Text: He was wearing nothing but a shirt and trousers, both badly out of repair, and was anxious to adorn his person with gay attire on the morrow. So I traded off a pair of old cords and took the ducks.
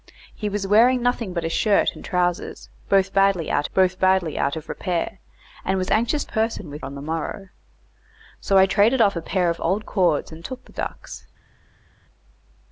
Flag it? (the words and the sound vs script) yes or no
yes